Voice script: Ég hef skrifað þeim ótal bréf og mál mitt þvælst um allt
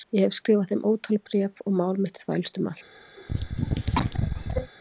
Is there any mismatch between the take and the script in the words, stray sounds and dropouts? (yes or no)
yes